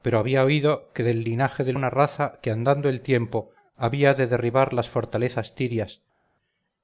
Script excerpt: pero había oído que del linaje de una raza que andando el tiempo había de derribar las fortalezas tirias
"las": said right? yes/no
yes